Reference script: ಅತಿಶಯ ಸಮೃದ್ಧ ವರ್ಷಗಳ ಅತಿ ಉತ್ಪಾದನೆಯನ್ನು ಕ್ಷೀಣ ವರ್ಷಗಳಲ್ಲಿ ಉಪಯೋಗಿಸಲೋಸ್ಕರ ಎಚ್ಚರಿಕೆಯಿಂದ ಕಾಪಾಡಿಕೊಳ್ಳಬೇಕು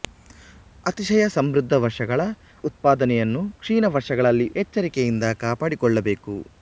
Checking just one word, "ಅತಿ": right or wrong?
wrong